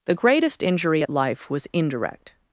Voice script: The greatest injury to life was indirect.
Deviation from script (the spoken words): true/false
true